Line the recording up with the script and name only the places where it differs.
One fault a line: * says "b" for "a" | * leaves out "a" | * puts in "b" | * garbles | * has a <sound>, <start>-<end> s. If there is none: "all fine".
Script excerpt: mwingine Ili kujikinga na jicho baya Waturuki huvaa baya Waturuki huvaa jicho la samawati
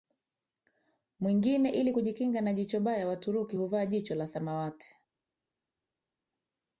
* leaves out "baya Waturuki huvaa"